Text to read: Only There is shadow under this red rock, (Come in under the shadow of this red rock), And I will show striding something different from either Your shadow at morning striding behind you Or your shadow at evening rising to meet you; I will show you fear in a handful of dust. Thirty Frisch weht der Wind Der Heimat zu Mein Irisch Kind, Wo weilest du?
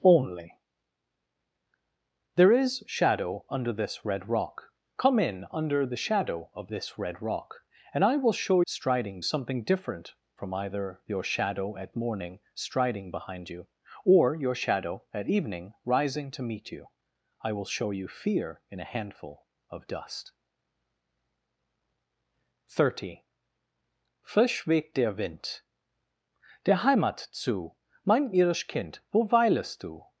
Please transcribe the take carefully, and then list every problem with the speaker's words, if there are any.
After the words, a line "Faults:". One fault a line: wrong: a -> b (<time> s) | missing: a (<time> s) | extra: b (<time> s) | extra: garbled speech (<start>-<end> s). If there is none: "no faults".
Only There is shadow under this red rock, (Come in under the shadow of this red rock), And I will show striding something different from either Your shadow at morning striding behind you Or your shadow at evening rising to meet you; I will show you fear in a handful of dust. Thirty Frisch weht der Wind Der Heimat zu Mein Irisch Kind, Wo weilest du?
Faults:
no faults